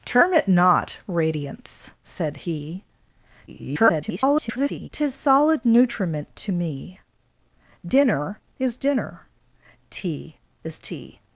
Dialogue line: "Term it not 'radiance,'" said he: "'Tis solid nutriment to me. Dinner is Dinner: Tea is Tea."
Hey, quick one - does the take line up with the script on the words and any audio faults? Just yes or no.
no